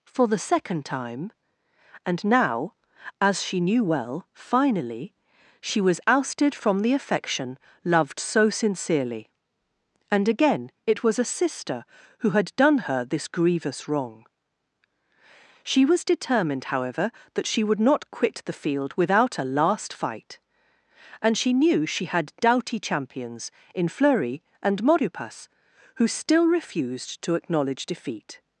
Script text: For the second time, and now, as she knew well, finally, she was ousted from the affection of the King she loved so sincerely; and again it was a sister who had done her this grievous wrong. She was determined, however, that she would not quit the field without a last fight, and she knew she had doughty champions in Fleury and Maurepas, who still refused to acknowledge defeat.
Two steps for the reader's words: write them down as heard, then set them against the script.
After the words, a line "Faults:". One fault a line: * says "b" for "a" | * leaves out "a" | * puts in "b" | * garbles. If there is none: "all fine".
For the second time, and now, as she knew well, finally, she was ousted from the affection loved so sincerely; and again it was a sister who had done her this grievous wrong. She was determined, however, that she would not quit the field without a last fight, and she knew she had doughty champions in Fleury and Maurepas, who still refused to acknowledge defeat.
Faults:
* leaves out "of the King she"